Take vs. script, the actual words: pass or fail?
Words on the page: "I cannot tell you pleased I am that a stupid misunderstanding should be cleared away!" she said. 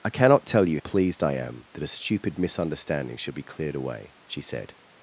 pass